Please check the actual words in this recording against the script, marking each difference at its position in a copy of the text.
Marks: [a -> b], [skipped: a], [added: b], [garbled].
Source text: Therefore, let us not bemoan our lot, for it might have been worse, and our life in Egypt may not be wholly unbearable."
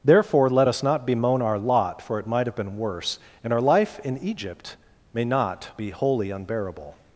Therefore, let us not bemoan our lot, for it might have been worse, and our life in Egypt may not be wholly unbearable."